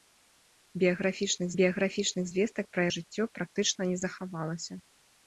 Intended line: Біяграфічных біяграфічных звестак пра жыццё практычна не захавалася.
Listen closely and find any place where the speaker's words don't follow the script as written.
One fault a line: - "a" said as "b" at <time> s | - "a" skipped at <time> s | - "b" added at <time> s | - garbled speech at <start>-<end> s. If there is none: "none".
none